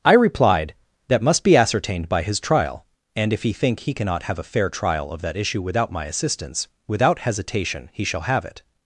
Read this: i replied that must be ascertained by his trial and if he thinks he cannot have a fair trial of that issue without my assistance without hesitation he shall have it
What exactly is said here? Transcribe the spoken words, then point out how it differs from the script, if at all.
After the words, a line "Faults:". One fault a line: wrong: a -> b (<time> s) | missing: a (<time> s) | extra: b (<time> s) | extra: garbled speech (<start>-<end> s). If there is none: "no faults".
i replied that must be ascertained by his trial and if he think he cannot have a fair trial of that issue without my assistance without hesitation he shall have it
Faults:
wrong: thinks -> think (3.5 s)